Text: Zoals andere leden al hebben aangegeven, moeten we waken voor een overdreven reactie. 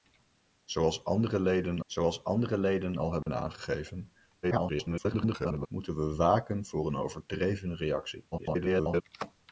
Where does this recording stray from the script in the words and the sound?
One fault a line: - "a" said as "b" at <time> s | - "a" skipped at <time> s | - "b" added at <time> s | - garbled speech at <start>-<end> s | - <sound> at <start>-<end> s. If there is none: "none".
- "zoals andere leden" added at 1.8 s
- dropout at 3.2-3.3 s
- garbled speech at 4.4-5.7 s
- garbled speech at 8.3-9.0 s